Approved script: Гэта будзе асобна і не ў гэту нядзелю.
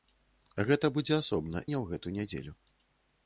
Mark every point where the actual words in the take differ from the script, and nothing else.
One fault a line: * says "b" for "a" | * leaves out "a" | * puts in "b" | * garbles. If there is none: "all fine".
* leaves out "і"